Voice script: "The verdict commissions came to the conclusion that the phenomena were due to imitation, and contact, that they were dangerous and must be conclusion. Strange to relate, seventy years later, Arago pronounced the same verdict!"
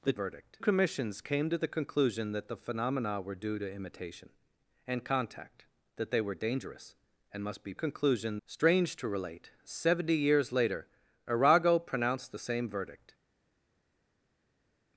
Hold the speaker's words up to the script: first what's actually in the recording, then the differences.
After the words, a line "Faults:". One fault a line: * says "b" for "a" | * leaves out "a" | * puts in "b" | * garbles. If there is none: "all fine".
"The verdict commissions came to the conclusion that the phenomena were due to imitation, and contact, that they were dangerous and must be conclusion. Strange to relate, seventy years later, Arago pronounced the same verdict!"
Faults:
all fine